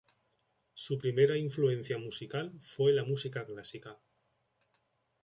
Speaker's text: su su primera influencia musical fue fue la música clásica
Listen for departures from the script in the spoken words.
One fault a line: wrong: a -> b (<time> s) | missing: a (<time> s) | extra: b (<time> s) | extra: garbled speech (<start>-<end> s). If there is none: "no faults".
missing: su (1.0 s)
missing: fue (2.9 s)